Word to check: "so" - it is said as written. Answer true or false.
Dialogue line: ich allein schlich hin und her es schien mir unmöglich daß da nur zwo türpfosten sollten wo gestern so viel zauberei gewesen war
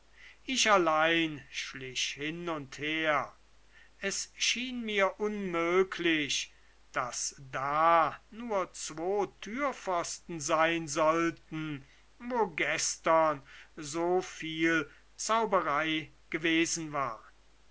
true